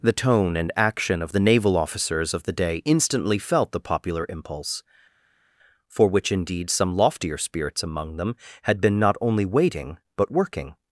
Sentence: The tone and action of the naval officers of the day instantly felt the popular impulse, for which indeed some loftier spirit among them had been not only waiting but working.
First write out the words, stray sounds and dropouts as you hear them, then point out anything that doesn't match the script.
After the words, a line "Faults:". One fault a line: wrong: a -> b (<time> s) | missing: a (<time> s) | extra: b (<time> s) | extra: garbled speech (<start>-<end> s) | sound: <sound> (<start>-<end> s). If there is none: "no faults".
The tone and action of the naval officers of the day instantly felt the popular impulse, for which indeed some loftier spirits among them had been not only waiting but working.
Faults:
wrong: spirit -> spirits (7.4 s)